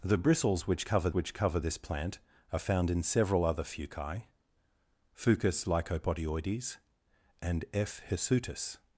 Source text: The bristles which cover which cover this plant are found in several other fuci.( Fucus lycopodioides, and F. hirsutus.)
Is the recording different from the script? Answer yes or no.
no